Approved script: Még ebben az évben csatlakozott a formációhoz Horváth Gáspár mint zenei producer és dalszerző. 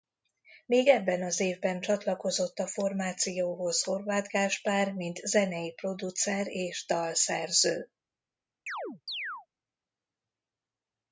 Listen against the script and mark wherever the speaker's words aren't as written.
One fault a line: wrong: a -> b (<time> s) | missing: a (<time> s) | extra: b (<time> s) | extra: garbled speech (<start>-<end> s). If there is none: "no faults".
no faults